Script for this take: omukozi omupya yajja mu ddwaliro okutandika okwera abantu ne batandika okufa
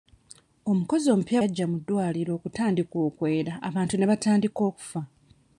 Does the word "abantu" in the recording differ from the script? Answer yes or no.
no